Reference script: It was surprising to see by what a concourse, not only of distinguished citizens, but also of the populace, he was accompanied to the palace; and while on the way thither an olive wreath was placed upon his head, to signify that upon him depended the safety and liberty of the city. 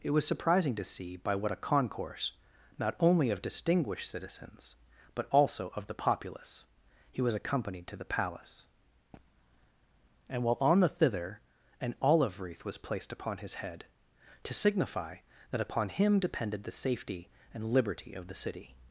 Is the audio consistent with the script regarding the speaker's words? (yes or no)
no